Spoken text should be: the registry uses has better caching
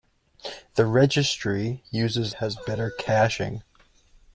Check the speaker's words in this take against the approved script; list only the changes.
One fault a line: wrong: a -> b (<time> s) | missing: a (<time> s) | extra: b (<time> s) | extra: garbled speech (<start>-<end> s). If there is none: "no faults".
no faults